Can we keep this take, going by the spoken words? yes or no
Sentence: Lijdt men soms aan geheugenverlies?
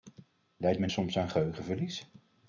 yes